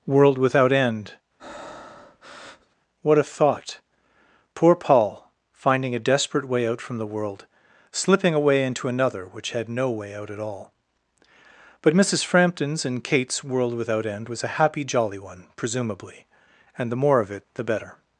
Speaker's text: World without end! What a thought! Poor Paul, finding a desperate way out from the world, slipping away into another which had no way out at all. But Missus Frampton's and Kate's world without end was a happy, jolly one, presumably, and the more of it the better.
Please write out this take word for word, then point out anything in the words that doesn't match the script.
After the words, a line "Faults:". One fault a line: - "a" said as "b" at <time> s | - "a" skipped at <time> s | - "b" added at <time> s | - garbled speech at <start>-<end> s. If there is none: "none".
World without end! What a thought! Poor Paul, finding a desperate way out from the world, slipping away into another which had no way out at all. But Missus Frampton's and Kate's world without end was a happy, jolly one, presumably, and the more of it the better.
Faults:
none